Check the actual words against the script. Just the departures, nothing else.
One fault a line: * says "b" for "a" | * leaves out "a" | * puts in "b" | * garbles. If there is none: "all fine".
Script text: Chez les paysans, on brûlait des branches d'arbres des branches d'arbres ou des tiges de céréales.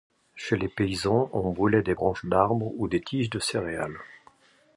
* leaves out "des branches d'arbres"